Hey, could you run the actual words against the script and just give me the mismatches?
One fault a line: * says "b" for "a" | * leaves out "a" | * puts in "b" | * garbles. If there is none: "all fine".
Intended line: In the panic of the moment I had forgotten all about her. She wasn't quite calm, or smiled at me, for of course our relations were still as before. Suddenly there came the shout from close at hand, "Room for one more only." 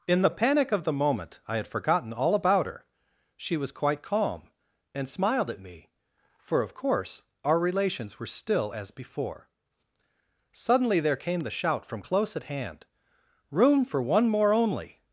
* says "was" for "wasn't"
* says "and" for "or"